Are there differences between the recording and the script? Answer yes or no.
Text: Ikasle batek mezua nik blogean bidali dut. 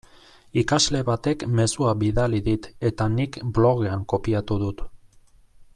yes